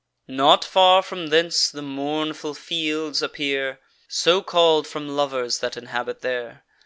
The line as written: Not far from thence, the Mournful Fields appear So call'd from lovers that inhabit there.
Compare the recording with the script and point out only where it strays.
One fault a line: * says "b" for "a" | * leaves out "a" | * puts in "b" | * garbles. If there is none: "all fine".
all fine